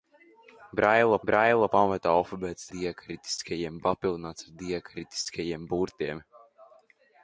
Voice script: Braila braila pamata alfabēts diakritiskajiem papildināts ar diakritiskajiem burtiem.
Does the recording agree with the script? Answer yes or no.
yes